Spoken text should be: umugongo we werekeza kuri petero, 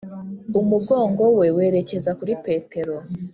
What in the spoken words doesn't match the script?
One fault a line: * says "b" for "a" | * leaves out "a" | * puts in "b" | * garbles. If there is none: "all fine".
all fine